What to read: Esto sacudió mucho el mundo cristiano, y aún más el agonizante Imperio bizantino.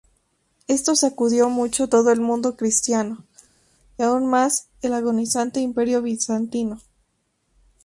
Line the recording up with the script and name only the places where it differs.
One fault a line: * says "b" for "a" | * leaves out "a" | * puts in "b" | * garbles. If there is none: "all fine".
* puts in "todo"